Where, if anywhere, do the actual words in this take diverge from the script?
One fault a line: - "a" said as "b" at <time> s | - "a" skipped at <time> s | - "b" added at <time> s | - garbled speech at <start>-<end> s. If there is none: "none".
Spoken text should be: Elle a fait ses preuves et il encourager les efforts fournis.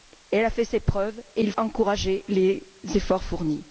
none